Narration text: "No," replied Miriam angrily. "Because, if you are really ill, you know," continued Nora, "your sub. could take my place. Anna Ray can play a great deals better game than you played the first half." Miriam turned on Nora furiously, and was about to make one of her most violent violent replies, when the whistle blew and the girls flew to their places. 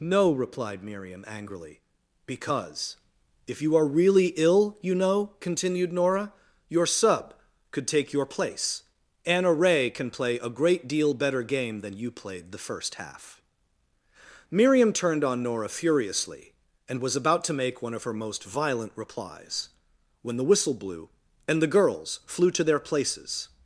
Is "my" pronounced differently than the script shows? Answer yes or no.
yes